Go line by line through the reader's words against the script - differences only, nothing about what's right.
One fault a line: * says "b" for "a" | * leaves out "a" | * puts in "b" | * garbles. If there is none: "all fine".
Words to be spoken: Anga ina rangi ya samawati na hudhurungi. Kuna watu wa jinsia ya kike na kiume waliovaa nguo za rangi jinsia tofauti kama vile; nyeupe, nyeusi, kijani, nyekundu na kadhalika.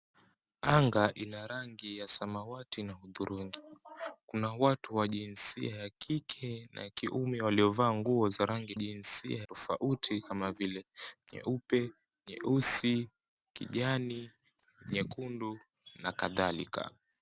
all fine